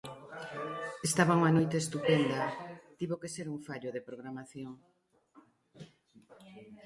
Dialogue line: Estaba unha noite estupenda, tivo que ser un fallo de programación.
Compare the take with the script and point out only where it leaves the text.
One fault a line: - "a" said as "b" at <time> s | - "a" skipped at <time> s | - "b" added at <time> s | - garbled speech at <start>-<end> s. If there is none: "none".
none